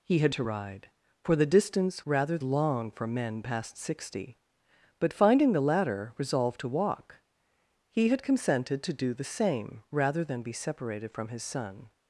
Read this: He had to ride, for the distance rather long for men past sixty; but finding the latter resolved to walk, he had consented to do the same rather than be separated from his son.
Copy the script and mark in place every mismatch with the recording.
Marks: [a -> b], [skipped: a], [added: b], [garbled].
He had to ride, for the distance rather long for men past sixty; but finding the latter resolved to walk, he had consented to do the same rather than be separated from his son.